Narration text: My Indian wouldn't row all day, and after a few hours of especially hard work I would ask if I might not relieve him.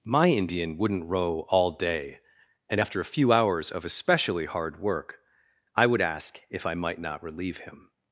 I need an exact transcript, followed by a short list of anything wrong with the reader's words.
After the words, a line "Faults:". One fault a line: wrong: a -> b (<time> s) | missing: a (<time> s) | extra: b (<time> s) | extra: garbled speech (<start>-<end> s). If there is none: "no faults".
My Indian wouldn't row all day, and after a few hours of especially hard work I would ask if I might not relieve him.
Faults:
no faults